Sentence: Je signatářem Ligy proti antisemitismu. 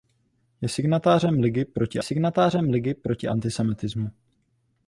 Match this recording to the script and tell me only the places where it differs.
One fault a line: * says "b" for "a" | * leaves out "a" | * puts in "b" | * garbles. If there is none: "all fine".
* puts in "signatářem Ligy proti"